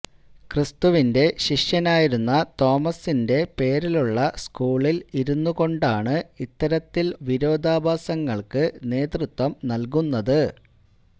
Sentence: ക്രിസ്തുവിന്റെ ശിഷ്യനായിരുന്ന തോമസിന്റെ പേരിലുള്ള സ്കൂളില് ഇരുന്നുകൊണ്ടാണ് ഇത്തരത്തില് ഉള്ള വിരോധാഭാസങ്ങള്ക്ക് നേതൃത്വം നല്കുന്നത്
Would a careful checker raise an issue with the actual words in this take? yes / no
yes